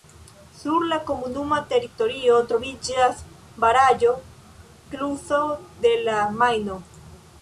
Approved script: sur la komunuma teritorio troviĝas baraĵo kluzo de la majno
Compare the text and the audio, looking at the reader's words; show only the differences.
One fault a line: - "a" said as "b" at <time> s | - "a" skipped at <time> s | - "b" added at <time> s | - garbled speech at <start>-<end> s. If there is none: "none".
none